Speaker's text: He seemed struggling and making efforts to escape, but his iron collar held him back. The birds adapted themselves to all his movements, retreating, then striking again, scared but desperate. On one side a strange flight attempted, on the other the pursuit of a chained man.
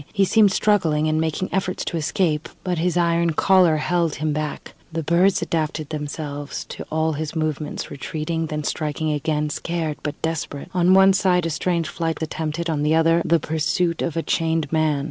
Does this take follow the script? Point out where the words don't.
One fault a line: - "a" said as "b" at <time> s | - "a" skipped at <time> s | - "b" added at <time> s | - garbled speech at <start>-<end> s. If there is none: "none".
none